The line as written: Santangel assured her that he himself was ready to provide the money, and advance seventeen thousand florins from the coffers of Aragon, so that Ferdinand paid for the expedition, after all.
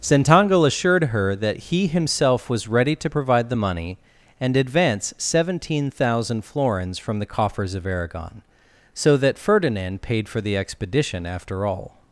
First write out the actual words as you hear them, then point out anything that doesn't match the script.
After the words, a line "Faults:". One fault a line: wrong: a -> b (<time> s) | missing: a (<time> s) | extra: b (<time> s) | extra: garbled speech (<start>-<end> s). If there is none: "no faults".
Santangel assured her that he himself was ready to provide the money, and advance seventeen thousand florins from the coffers of Aragon, so that Ferdinand paid for the expedition, after all.
Faults:
no faults